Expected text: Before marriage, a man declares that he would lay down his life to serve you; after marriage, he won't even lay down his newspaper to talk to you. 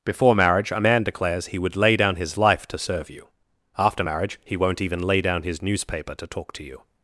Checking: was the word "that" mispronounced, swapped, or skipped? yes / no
yes